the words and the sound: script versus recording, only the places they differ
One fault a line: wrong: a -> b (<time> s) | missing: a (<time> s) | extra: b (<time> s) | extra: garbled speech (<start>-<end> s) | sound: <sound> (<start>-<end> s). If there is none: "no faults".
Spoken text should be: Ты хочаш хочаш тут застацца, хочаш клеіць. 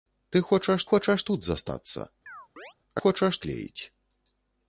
sound: chirp (2.3-2.7 s)